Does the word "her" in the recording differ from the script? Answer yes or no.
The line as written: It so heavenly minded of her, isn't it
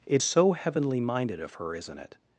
no